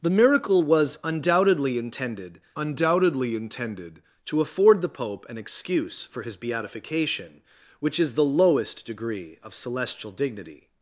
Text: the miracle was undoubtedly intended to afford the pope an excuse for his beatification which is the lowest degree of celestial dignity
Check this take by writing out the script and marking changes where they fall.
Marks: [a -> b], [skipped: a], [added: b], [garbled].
the miracle was undoubtedly intended [added: undoubtedly intended] to afford the pope an excuse for his beatification which is the lowest degree of celestial dignity